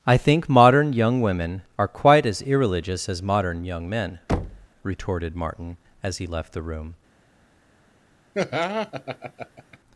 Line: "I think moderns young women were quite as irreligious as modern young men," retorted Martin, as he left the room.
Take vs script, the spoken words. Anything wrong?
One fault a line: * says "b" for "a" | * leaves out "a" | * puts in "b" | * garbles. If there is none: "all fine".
* says "modern" for "moderns"
* says "are" for "were"